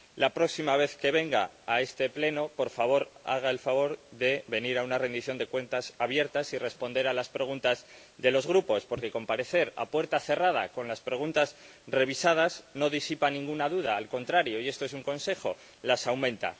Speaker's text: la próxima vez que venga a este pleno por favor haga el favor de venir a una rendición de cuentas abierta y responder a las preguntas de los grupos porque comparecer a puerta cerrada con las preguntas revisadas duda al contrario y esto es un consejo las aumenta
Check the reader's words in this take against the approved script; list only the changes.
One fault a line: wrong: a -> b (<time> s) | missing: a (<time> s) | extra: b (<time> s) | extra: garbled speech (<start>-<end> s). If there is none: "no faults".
extra: no disipa ninguna (12.7 s)